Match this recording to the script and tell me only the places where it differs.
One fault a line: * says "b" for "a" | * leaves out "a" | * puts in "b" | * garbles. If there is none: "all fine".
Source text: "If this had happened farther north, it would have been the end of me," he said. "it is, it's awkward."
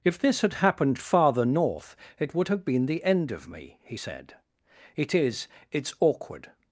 all fine